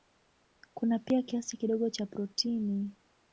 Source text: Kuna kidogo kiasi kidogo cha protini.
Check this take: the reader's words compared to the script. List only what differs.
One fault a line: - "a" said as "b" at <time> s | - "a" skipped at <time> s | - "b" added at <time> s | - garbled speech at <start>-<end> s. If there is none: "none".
- "kidogo" said as "pia" at 1.0 s